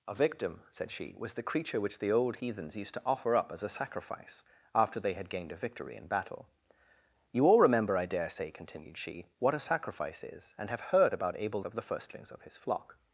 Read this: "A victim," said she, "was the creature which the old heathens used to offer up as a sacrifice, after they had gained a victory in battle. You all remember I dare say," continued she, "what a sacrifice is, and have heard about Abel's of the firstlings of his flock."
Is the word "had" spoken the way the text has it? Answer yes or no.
yes